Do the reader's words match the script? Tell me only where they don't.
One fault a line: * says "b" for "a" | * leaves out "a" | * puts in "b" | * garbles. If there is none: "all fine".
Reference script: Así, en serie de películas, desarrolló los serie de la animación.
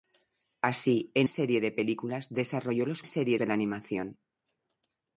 all fine